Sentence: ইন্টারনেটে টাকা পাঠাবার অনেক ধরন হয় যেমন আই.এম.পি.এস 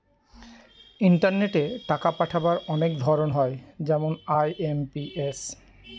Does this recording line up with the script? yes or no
yes